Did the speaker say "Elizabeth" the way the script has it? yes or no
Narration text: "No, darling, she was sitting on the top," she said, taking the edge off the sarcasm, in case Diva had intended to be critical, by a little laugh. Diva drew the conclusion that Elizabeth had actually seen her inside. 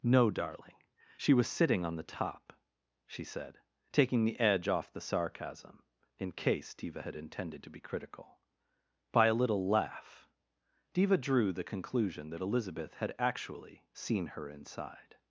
yes